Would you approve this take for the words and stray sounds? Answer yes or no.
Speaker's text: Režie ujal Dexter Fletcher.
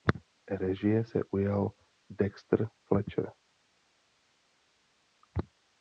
no